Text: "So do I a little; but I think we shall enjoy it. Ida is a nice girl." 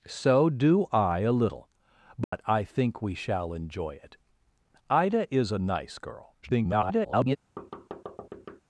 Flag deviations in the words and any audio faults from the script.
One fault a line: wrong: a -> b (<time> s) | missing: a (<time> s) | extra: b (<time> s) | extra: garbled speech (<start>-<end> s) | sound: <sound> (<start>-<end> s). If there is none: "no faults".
sound: dropout (2.2-2.3 s)
extra: garbled speech (6.4-7.4 s)
sound: thud (7.6-8.6 s)